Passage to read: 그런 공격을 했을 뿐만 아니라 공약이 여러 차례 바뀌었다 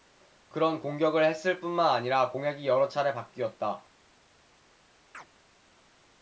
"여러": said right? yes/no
yes